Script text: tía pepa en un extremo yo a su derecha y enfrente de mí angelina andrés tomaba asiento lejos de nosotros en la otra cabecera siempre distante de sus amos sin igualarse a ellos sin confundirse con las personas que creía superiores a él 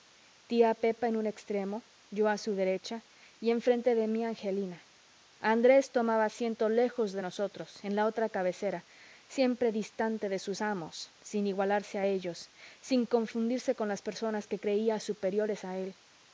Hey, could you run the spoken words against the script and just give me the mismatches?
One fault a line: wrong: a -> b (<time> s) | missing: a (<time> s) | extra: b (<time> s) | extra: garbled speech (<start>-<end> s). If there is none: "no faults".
no faults